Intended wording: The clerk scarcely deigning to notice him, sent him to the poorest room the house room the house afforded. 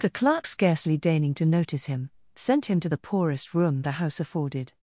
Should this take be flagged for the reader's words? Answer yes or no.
yes